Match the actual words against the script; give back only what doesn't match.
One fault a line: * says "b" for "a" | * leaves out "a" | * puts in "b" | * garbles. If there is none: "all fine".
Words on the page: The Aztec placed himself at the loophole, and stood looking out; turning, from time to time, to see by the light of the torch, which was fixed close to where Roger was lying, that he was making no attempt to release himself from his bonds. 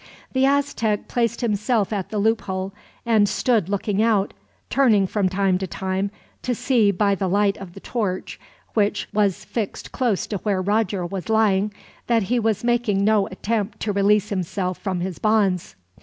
all fine